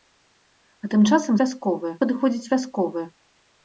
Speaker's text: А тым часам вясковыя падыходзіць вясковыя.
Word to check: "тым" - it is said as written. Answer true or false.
true